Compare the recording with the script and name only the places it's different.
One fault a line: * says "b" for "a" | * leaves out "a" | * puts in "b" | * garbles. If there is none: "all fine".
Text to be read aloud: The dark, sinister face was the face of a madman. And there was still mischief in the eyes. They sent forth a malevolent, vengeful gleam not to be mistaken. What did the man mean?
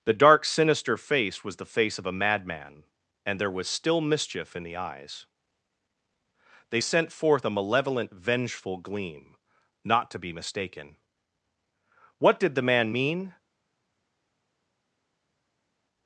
all fine